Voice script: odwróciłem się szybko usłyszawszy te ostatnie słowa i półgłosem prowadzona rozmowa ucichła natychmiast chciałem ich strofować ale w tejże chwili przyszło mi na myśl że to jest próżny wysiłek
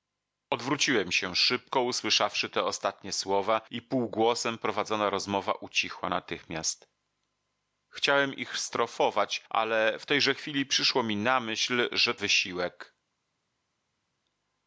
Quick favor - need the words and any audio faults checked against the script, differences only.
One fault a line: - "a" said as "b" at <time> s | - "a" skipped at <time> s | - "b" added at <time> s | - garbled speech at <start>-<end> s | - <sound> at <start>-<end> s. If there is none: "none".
- "to jest próżny" skipped at 12.1 s